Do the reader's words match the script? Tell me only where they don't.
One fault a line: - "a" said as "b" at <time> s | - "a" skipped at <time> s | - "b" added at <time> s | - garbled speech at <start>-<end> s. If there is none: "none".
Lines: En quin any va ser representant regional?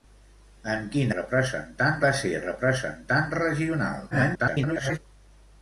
- "any" said as "representant" at 1.2 s
- garbled speech at 4.1-5.0 s